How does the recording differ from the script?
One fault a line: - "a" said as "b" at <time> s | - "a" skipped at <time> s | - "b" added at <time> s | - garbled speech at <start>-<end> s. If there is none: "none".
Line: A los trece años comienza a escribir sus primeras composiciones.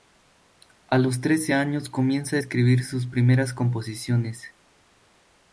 none